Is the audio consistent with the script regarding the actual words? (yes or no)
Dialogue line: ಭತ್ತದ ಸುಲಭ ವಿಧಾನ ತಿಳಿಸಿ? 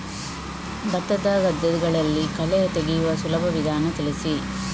no